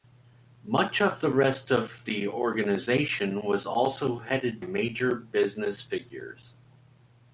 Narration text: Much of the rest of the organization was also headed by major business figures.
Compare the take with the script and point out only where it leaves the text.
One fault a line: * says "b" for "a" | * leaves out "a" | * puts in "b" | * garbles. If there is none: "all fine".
* leaves out "by"